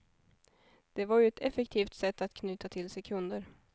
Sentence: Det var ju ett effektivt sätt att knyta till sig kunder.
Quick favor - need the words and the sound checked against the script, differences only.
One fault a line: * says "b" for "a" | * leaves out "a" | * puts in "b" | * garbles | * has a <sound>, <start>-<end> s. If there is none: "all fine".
all fine